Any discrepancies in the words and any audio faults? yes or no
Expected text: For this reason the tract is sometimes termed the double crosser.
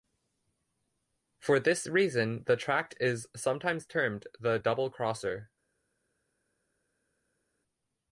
no